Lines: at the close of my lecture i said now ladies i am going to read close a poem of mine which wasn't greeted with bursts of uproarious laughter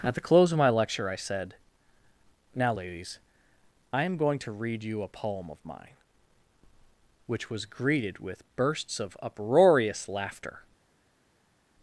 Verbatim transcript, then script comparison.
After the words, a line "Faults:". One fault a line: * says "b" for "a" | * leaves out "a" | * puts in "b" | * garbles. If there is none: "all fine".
at the close of my lecture i said now ladies i am going to read you a poem of mine which was greeted with bursts of uproarious laughter
Faults:
* says "you" for "close"
* says "was" for "wasn't"